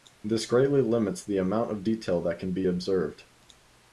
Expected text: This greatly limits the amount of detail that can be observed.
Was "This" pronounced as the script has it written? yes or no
yes